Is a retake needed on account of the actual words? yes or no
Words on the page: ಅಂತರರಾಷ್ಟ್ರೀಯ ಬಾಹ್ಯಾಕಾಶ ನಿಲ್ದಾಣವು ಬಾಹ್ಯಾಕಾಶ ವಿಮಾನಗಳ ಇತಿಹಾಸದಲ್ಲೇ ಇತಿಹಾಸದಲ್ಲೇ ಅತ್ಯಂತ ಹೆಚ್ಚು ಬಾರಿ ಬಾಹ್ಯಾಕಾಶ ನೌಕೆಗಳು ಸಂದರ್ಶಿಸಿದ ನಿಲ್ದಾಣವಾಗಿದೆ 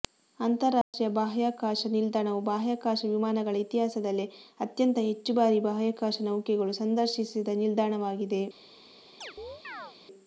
yes